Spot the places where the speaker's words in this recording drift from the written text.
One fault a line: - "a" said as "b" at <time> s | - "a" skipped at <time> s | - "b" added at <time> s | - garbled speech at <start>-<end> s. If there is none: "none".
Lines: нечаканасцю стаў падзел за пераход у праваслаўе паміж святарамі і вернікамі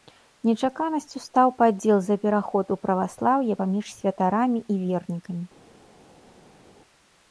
none